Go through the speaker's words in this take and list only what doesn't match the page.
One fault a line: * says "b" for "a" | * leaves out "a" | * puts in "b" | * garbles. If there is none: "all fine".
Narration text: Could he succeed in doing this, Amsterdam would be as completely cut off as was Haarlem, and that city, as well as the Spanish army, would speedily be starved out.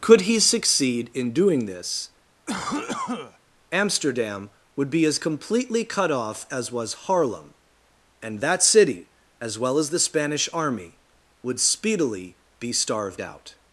all fine